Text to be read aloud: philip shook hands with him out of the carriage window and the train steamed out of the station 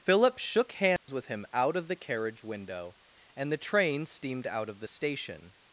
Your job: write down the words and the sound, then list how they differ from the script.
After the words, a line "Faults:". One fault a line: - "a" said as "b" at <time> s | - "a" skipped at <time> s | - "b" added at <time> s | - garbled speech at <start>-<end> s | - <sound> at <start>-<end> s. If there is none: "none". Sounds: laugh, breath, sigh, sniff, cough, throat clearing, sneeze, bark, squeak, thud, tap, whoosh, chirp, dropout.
philip shook hands with him out of the carriage window and the train steamed out of the station
Faults:
- dropout at 1.0-1.1 s